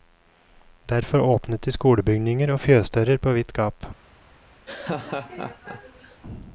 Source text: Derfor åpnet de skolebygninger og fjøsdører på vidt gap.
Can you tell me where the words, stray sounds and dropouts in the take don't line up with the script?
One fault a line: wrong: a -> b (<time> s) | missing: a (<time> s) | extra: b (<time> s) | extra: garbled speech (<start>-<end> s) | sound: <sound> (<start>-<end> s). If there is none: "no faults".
sound: laugh (4.7-6.2 s)